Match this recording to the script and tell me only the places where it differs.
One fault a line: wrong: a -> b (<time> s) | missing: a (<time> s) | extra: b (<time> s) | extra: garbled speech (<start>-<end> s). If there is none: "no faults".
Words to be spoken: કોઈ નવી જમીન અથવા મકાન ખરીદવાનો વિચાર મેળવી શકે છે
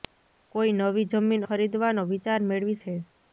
missing: અથવા મકાન (1.4 s)
missing: શકે (2.8 s)